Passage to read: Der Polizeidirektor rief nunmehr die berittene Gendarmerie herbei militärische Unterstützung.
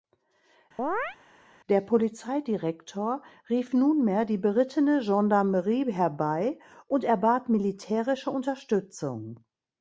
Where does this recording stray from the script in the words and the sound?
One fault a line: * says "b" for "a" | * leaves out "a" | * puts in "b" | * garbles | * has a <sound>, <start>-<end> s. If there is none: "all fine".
* has a chirp, 0.8-1.2 s
* puts in "und erbat"